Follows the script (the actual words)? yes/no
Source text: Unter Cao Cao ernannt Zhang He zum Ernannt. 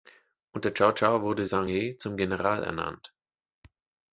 no